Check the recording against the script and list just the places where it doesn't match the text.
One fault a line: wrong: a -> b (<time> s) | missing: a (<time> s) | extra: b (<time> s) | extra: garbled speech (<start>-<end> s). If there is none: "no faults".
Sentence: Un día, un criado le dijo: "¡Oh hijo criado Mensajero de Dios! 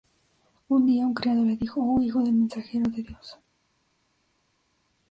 wrong: criado -> del (2.2 s)